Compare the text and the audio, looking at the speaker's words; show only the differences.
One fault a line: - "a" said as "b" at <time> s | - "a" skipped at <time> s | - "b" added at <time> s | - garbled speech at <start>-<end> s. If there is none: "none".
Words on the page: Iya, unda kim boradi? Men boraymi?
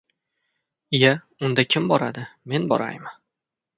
none